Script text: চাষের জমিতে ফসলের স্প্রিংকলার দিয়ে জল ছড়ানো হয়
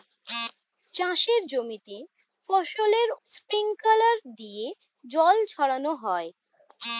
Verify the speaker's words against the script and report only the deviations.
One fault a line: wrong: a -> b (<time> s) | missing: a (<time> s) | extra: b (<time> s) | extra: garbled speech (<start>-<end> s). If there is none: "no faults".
no faults